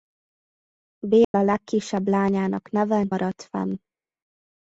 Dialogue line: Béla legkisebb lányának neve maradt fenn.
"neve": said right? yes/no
yes